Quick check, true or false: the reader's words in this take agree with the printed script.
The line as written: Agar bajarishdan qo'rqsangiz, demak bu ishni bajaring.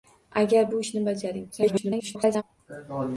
false